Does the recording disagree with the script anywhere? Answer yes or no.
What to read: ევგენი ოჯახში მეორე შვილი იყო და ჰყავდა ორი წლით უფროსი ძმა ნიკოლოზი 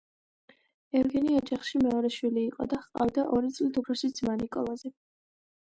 no